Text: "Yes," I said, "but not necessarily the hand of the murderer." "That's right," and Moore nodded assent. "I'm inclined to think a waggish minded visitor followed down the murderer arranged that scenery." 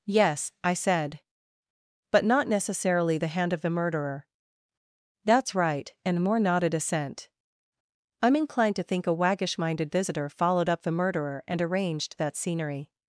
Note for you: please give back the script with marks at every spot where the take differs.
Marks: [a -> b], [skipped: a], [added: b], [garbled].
"Yes," I said, "but not necessarily the hand of the murderer." "That's right," and Moore nodded assent. "I'm inclined to think a waggish minded visitor followed [down -> up] the murderer [added: and] arranged that scenery."